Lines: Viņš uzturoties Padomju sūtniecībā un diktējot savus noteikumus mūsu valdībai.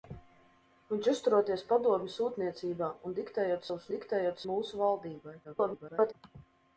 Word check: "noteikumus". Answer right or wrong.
wrong